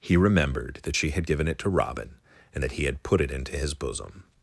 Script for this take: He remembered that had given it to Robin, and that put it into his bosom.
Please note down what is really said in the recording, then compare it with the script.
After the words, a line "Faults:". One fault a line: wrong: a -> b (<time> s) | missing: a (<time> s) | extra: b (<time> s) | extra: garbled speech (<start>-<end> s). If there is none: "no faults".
He remembered that she had given it to Robin, and that he had put it into his bosom.
Faults:
extra: she (0.9 s)
extra: he had (2.7 s)